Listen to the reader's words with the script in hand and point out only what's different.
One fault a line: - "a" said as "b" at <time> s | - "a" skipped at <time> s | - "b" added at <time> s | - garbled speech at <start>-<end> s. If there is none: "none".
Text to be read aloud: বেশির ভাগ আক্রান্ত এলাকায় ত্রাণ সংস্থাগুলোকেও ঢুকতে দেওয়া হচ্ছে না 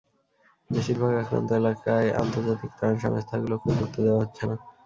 - "আন্তর্জাতিক" added at 2.2 s